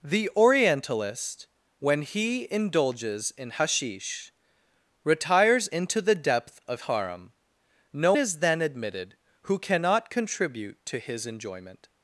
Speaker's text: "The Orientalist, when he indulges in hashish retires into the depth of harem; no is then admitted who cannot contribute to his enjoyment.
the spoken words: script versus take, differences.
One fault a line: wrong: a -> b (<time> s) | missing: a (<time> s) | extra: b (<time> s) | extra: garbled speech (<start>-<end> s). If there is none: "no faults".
no faults